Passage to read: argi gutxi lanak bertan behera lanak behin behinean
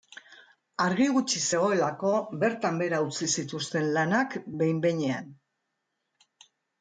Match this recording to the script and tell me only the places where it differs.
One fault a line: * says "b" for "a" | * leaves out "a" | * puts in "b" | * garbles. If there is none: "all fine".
* says "zegoelako" for "lanak"
* puts in "utzi zituzten"